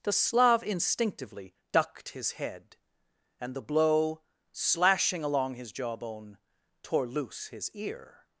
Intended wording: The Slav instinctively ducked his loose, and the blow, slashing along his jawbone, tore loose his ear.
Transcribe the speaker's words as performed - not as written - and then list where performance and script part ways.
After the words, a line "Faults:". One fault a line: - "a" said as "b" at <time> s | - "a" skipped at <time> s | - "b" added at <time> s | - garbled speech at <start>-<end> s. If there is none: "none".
The Slav instinctively ducked his head, and the blow, slashing along his jawbone, tore loose his ear.
Faults:
- "loose" said as "head" at 2.3 s